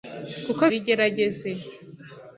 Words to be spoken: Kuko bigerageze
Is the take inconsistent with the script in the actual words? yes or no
no